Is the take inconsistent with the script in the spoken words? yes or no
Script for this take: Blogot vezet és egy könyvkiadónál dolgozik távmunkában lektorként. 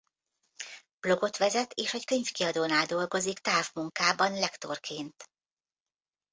no